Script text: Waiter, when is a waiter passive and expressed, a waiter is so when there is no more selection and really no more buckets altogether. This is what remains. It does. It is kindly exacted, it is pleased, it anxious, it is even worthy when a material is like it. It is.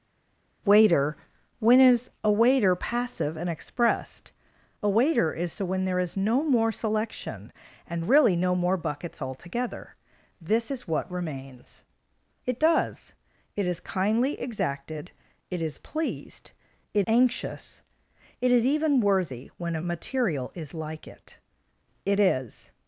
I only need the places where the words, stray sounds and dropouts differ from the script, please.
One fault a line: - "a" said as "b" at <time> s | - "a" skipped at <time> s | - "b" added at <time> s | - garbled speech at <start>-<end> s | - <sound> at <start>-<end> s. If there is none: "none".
none